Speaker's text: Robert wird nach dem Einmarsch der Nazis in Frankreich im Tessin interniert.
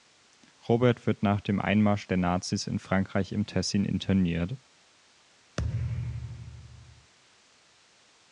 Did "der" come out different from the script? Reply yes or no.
no